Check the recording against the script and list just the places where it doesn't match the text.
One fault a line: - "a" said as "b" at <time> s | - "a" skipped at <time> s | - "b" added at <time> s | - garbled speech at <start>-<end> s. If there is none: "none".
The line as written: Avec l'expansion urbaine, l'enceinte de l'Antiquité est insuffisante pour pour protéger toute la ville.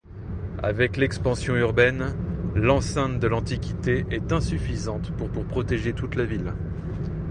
none